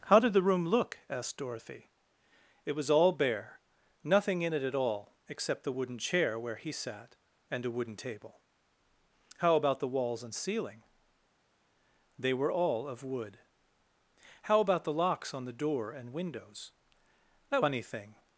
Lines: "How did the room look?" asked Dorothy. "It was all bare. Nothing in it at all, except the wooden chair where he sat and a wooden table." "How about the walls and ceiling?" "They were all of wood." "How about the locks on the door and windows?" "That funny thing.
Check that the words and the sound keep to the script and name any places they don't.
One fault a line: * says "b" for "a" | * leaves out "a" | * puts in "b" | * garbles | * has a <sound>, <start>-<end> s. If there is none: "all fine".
all fine